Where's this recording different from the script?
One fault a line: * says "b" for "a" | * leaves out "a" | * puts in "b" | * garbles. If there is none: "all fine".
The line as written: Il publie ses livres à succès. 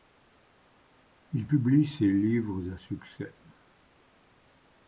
all fine